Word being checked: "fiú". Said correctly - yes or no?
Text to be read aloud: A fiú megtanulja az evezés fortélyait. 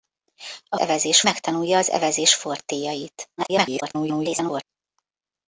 no